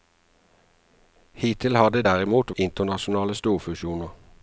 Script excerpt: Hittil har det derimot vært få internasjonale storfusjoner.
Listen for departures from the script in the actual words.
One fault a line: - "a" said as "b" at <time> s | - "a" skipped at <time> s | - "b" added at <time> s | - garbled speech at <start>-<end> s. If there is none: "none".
- "vært få" skipped at 2.5 s